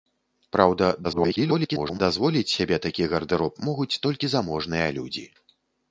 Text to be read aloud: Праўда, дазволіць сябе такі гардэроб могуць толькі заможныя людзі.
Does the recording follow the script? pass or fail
fail